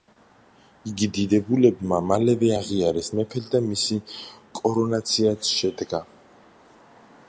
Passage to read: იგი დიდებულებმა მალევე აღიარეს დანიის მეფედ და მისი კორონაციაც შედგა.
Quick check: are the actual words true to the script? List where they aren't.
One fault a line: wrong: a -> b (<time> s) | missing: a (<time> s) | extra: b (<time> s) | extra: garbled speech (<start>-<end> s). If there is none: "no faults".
missing: დანიის (3.1 s)